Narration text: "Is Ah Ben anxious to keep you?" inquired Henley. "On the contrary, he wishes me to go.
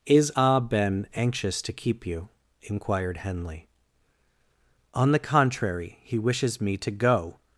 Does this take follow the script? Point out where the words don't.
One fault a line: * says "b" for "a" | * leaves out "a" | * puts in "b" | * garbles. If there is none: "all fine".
all fine